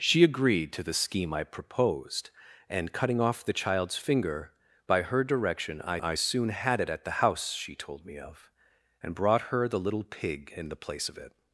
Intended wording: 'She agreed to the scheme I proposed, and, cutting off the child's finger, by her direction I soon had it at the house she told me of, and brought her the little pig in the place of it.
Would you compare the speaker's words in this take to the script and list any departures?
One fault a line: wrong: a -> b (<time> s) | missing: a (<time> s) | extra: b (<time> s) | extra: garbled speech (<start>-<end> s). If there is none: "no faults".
extra: I (6.0 s)